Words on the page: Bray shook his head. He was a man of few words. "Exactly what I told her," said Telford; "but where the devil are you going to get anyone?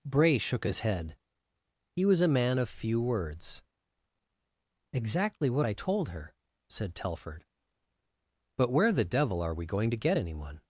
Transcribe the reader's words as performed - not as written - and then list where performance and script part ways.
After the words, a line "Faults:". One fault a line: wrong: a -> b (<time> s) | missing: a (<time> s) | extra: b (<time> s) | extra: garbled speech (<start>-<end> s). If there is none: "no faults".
Bray shook his head. He was a man of few words. "Exactly what I told her," said Telford; "but where the devil are we going to get anyone?
Faults:
wrong: you -> we (9.5 s)